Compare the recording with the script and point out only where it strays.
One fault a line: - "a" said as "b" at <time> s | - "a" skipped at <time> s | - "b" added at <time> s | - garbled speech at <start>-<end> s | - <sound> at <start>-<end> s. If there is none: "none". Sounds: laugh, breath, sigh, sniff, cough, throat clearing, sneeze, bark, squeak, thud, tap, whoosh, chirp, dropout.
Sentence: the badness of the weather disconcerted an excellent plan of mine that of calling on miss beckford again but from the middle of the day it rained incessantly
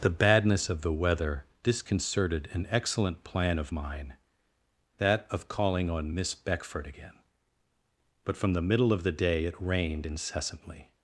none